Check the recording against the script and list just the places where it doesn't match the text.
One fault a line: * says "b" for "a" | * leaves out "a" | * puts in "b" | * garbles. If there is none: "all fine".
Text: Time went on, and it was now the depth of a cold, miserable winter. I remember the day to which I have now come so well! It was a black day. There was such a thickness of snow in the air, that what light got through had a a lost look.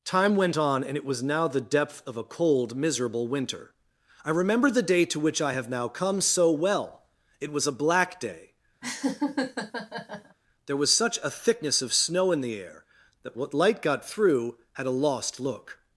* leaves out "a"